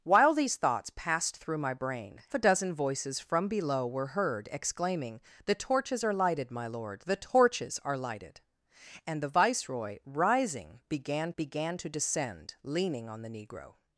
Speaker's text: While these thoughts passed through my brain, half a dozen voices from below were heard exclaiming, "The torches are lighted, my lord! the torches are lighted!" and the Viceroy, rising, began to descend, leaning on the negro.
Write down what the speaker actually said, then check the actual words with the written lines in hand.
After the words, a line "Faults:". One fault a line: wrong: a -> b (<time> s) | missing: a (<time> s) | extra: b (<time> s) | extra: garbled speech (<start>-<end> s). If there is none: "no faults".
While these thoughts passed through my brain, a dozen voices from below were heard exclaiming, "The torches are lighted, my lord! the torches are lighted!" and the Viceroy, rising, began began to descend, leaning on the negro.
Faults:
missing: half (2.2 s)
extra: began (11.4 s)